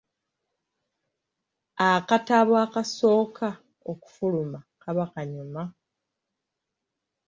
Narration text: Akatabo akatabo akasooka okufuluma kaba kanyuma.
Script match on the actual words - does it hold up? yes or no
no